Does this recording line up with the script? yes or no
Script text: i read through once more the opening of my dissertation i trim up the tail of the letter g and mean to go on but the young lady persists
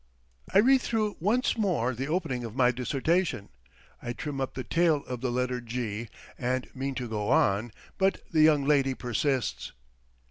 yes